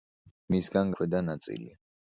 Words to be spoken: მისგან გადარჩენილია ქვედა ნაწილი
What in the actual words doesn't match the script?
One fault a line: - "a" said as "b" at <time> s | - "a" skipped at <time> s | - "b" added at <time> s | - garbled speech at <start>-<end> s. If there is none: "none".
- "გადარჩენილია" skipped at 0.9 s